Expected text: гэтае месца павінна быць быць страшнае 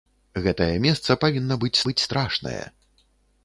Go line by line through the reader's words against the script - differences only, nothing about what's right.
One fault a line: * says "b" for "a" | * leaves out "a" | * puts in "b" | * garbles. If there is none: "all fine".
all fine